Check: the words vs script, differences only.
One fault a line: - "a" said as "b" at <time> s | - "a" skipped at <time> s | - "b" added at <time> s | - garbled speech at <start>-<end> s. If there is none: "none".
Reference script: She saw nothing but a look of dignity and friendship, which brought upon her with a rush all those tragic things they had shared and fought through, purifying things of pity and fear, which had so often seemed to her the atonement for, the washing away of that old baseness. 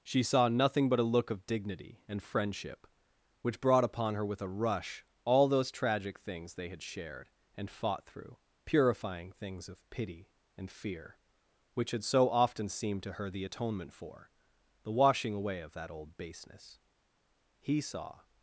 - "He saw" added at 17.6 s